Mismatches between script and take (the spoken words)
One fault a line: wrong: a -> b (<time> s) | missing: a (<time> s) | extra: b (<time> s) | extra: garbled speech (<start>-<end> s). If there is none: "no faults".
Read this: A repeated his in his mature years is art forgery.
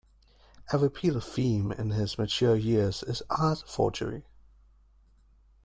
wrong: his -> theme (1.2 s)